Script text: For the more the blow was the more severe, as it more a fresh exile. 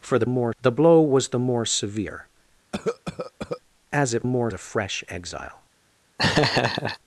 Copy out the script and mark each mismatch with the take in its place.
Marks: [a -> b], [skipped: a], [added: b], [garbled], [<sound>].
For the more the blow was the more severe, [cough] as it more a fresh exile. [laugh]